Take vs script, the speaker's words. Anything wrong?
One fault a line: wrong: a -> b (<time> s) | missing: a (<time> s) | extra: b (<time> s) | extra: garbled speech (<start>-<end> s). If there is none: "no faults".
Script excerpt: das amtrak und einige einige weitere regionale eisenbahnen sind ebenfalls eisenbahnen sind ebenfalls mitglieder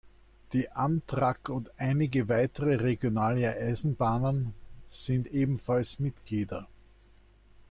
wrong: das -> die (0.5 s)
missing: einige (2.3 s)
missing: eisenbahnen sind ebenfalls (6.0 s)